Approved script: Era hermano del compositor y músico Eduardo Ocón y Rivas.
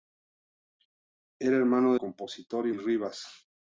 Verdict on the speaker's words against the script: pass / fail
fail